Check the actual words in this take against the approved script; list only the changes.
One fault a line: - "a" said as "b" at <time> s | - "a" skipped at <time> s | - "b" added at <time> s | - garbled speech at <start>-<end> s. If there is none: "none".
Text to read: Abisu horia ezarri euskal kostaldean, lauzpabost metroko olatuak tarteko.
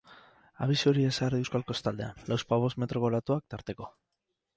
none